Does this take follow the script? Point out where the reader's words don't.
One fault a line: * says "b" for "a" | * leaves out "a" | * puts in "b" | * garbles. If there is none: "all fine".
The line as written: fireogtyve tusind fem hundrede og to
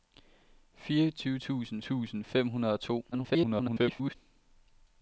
* puts in "tusind"
* garbles